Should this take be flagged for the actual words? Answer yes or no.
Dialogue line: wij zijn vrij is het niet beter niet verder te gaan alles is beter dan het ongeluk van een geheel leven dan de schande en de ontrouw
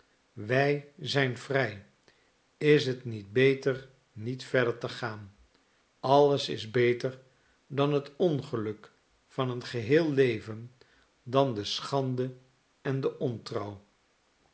no